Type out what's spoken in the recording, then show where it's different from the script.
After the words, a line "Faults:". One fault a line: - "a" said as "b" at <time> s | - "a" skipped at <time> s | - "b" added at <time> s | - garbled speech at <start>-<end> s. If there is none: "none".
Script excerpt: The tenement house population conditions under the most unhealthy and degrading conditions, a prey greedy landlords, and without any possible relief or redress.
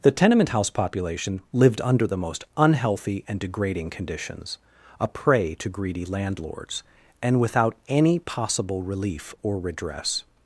The tenement house population lived under the most unhealthy and degrading conditions, a prey to greedy landlords, and without any possible relief or redress.
Faults:
- "conditions" said as "lived" at 1.5 s
- "to" added at 5.5 s